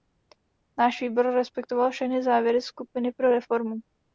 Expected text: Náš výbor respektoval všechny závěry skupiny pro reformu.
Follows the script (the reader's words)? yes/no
yes